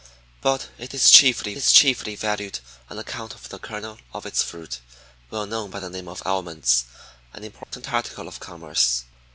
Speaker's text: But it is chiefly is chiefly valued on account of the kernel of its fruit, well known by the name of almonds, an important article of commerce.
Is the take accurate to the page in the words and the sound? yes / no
no